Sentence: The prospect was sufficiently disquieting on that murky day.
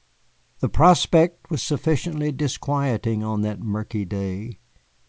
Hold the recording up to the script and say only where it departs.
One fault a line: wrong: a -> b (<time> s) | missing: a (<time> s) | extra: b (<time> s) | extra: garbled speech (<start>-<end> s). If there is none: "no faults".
no faults